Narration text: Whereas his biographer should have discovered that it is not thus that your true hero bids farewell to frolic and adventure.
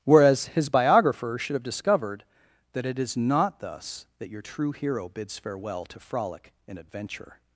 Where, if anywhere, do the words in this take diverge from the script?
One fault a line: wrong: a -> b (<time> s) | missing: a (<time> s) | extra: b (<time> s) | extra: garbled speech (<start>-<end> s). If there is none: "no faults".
no faults